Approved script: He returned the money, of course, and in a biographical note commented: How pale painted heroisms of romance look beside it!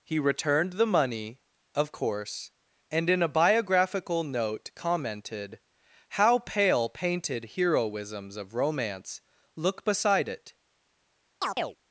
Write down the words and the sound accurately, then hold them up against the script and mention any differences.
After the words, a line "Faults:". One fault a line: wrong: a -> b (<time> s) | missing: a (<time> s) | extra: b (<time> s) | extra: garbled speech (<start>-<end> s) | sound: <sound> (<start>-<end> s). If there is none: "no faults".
He returned the money, of course, and in a biographical note commented: How pale painted heroisms of romance look beside it!
Faults:
sound: chirp (11.4-11.8 s)